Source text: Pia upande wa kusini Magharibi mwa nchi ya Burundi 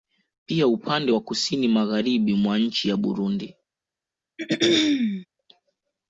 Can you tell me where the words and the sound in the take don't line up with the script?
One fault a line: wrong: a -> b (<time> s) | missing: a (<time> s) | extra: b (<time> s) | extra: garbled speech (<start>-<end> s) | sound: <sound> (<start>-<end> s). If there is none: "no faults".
sound: throat clearing (4.4-5.3 s)